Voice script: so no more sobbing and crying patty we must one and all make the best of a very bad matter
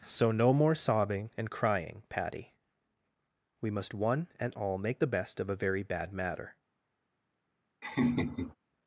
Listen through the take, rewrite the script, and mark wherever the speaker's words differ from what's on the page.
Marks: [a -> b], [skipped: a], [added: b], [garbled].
so no more sobbing and crying patty we must one and all make the best of a very bad matter